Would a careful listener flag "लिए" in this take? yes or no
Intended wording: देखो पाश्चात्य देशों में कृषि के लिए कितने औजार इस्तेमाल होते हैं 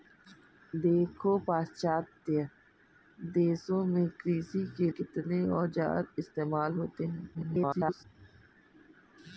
yes